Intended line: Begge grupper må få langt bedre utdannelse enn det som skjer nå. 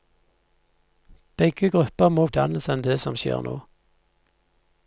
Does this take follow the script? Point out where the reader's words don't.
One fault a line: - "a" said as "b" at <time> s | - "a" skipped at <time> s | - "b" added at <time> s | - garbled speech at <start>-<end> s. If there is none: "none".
- "få langt bedre" skipped at 2.3 s